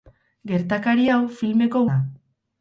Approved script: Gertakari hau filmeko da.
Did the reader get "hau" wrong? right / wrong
right